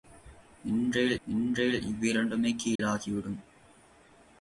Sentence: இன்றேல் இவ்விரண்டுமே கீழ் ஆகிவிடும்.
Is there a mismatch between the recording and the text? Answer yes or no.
yes